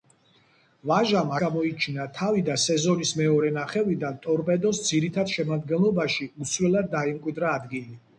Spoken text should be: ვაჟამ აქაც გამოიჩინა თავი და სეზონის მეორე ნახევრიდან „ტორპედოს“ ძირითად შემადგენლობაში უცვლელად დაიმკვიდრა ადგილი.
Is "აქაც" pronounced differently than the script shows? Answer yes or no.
yes